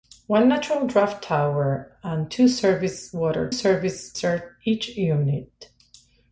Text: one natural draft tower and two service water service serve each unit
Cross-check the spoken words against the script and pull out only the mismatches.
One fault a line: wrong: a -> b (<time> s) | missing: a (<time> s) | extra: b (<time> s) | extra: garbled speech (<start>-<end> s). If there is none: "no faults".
no faults